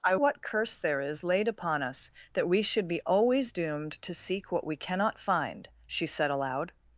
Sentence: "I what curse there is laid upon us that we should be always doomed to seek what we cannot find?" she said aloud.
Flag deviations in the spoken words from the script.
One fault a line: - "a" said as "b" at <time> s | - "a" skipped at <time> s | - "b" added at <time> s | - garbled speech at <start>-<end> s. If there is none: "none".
none